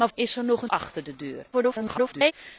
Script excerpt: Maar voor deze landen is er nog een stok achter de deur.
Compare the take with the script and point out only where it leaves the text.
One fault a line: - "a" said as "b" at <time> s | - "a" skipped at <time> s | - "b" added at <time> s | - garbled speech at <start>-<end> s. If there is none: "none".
- "voor deze landen" skipped at 0.1 s
- "stok" skipped at 0.7 s
- garbled speech at 1.5-2.3 s